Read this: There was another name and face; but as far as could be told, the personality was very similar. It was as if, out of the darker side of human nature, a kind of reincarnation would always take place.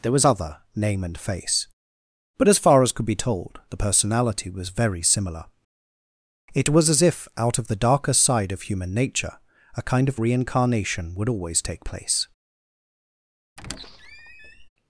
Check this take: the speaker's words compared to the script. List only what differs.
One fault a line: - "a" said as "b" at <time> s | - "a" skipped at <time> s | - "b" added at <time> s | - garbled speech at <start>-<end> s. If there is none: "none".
- "another" said as "other" at 0.2 s